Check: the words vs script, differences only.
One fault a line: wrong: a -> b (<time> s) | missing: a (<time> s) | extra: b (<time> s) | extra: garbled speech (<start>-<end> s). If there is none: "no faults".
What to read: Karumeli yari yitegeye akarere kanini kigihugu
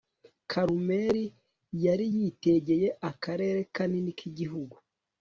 no faults